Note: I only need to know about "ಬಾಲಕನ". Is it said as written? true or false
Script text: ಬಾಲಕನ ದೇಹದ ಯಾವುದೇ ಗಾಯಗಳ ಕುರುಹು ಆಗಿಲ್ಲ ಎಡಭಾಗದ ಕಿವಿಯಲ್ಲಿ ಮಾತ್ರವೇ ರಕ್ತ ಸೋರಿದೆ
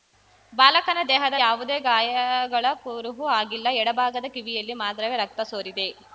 true